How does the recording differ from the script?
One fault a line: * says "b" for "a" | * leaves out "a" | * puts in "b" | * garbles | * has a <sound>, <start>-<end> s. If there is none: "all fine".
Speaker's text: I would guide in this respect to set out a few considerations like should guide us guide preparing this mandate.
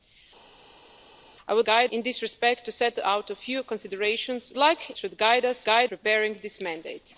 all fine